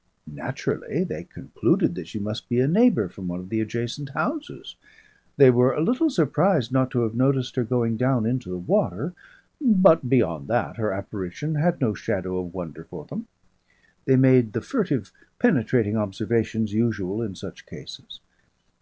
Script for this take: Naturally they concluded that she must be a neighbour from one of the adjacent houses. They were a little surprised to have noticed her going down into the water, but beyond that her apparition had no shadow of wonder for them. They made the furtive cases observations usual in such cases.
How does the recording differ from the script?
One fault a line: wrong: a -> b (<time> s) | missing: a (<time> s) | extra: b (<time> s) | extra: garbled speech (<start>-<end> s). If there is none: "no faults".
extra: not (6.7 s)
wrong: cases -> penetrating (15.4 s)